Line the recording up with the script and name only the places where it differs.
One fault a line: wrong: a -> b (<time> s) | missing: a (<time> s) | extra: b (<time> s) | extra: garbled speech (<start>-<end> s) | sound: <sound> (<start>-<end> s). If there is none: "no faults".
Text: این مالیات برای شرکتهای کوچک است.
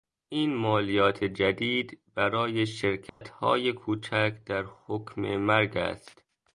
extra: جدید (1.2 s)
sound: dropout (3.1-3.2 s)
extra: در حکم مرگ (4.5 s)